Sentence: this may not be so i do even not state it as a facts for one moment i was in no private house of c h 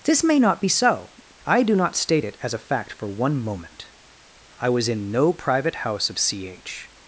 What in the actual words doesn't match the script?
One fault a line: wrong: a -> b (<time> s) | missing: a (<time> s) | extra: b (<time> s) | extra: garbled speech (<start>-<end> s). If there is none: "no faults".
missing: even (1.8 s)
wrong: facts -> fact (2.6 s)